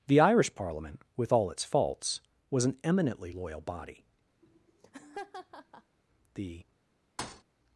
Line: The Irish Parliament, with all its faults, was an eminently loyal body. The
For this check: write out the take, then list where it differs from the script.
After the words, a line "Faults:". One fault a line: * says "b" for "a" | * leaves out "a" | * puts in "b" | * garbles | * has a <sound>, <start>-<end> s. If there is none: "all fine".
The Irish Parliament, with all its faults, was an eminently loyal body. The
Faults:
* has a laugh, 4.4-6.0 s
* has a thud, 7.2-7.4 s